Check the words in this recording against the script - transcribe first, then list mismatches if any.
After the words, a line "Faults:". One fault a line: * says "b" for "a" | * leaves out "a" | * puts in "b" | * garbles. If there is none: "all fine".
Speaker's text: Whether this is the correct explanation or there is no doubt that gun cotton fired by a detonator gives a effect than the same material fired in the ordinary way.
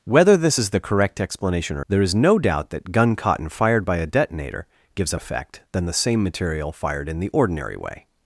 Whether this is the correct explanation or there is no doubt that gun cotton fired by a detonator gives a effect than the same material fired in the ordinary way.
Faults:
all fine